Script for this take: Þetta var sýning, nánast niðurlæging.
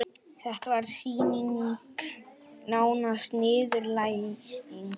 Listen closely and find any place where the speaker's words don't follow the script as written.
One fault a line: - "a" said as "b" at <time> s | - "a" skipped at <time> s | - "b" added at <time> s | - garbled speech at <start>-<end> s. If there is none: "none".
none